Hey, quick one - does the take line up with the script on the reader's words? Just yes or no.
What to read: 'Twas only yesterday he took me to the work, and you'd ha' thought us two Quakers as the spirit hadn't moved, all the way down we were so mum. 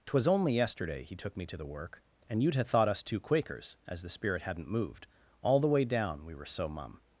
yes